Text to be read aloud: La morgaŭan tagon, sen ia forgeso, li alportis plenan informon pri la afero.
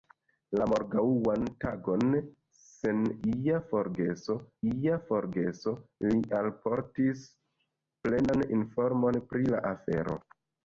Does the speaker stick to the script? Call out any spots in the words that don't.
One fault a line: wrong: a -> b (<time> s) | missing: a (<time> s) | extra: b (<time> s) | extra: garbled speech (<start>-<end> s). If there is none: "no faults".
extra: ia forgeso (4.7 s)